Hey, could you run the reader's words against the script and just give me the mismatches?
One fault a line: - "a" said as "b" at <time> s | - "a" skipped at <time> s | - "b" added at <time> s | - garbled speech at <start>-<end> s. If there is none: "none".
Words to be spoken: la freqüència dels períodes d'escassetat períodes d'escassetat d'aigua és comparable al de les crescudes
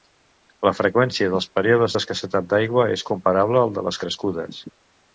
- "períodes d'escassetat" skipped at 2.5 s